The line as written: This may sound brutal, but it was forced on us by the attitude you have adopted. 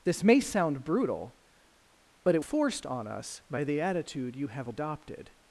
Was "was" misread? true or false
true